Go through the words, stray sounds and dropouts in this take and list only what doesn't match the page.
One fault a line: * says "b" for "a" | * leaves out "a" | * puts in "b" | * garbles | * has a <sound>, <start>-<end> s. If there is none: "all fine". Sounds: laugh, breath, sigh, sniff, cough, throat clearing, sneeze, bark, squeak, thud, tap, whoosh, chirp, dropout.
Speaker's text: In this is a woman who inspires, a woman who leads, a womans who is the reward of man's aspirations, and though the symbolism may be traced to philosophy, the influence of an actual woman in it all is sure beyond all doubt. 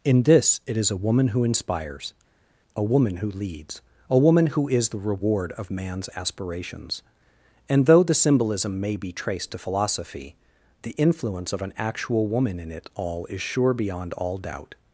* puts in "it"
* says "woman" for "womans"